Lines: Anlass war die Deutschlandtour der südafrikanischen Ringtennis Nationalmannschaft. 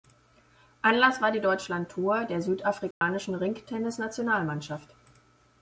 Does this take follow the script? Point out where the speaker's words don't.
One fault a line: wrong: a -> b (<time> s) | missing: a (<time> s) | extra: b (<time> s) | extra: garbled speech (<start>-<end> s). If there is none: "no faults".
no faults